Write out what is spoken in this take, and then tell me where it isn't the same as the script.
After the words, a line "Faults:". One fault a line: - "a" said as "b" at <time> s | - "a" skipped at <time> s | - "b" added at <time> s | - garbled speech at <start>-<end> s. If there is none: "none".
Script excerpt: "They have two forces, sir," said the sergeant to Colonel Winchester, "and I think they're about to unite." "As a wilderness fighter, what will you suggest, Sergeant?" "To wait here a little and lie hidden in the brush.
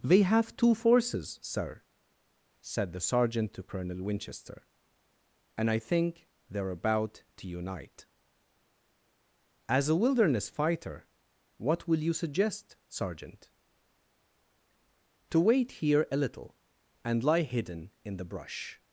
"They have two forces, sir," said the sergeant to Colonel Winchester, "and I think they're about to unite." "As a wilderness fighter, what will you suggest, Sergeant?" "To wait here a little and lie hidden in the brush.
Faults:
none